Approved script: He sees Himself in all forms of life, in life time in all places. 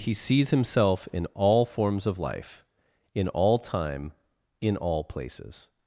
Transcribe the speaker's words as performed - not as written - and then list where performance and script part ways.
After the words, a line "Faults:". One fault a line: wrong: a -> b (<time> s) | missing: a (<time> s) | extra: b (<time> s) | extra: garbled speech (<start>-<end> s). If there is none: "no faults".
He sees Himself in all forms of life, in all time in all places.
Faults:
wrong: life -> all (3.3 s)